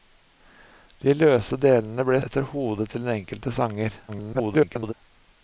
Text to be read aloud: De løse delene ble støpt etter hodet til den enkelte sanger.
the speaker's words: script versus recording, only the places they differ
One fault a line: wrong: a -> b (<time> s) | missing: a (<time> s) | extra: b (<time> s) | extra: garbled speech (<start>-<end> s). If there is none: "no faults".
missing: støpt (2.2 s)
extra: garbled speech (4.1-4.9 s)